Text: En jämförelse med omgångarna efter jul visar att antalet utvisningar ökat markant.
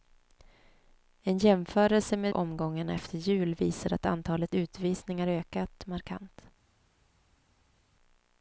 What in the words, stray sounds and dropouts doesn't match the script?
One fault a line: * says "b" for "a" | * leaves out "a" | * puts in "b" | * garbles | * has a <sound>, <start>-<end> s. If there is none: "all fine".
all fine